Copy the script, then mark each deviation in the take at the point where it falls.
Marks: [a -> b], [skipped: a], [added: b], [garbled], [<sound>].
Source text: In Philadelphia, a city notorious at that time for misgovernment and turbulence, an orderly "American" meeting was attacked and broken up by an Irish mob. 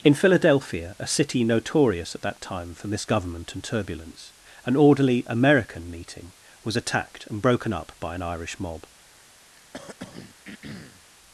In Philadelphia, a city notorious at that time for misgovernment and turbulence, an orderly "American" meeting was attacked and broken up by an Irish mob. [throat clearing]